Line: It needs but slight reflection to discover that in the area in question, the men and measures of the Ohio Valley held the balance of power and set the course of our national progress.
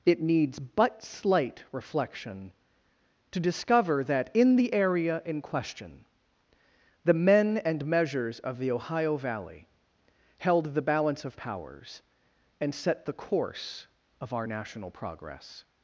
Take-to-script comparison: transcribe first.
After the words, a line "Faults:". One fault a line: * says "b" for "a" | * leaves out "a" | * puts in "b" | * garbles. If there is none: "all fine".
It needs but slight reflection to discover that in the area in question, the men and measures of the Ohio Valley held the balance of powers and set the course of our national progress.
Faults:
* says "powers" for "power"